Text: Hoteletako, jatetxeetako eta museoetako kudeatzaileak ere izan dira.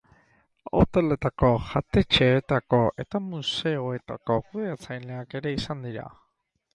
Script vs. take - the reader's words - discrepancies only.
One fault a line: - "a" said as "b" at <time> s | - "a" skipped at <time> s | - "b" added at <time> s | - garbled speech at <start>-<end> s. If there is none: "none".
none